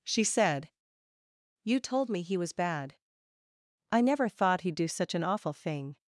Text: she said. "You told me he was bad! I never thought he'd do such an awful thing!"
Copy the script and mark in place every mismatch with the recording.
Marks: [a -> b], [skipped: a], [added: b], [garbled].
she said. "You told me he was bad! I never thought he'd do such an awful thing!"